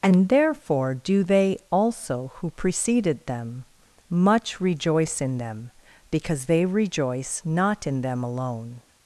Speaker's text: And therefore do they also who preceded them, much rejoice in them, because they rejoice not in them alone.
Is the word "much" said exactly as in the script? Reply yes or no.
yes